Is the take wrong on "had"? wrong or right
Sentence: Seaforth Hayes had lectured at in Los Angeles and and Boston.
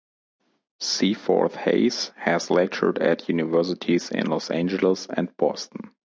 wrong